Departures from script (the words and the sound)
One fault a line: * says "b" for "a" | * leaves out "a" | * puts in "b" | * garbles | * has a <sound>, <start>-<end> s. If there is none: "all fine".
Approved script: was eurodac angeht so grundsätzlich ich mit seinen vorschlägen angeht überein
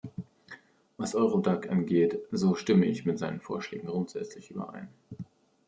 * says "stimme" for "grundsätzlich"
* says "grundsätzlich" for "angeht"